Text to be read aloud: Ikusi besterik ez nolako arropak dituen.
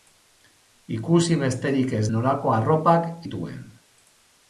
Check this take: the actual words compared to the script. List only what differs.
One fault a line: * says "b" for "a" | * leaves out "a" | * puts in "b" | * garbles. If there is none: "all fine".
all fine